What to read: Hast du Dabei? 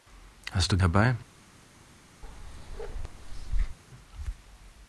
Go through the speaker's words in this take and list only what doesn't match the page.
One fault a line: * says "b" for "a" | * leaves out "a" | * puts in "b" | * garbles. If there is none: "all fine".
all fine